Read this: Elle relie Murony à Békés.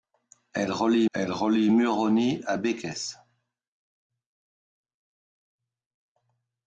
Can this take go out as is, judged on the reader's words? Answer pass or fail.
fail